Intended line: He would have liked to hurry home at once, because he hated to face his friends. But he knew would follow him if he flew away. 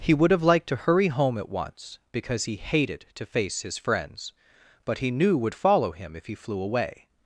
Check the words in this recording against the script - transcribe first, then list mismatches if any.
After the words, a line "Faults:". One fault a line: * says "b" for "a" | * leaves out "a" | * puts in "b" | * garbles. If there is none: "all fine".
He would have liked to hurry home at once, because he hated to face his friends. But he knew would follow him if he flew away.
Faults:
all fine